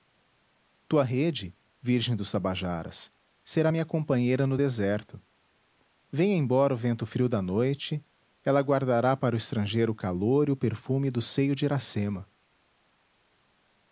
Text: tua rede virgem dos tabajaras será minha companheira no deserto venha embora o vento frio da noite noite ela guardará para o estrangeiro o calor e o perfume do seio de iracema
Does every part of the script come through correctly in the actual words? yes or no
no